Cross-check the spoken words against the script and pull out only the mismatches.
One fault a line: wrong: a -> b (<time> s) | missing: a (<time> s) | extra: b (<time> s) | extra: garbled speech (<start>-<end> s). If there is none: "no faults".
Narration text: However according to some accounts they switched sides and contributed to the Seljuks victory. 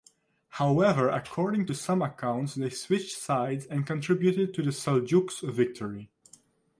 no faults